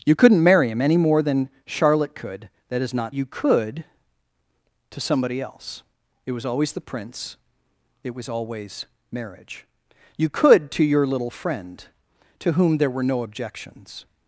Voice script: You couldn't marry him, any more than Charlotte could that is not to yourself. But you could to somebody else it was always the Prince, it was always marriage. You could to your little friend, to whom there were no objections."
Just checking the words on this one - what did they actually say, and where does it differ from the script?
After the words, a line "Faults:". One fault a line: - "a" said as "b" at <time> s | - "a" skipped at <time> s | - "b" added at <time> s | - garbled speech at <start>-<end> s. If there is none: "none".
You couldn't marry him, any more than Charlotte could that is not you could to somebody else it was always the Prince, it was always marriage. You could to your little friend, to whom there were no objections."
Faults:
- "to yourself But" skipped at 3.1 s